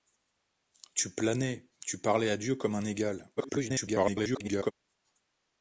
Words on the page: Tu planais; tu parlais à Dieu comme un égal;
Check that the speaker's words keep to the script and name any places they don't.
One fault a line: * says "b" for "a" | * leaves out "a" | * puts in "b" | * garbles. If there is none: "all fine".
* garbles